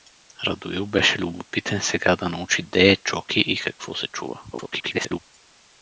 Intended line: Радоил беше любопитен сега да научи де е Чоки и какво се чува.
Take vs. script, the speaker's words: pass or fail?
fail